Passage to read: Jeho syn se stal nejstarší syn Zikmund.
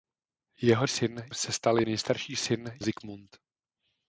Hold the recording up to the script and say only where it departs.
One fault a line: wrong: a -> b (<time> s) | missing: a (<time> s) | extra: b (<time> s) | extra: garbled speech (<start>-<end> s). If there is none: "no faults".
no faults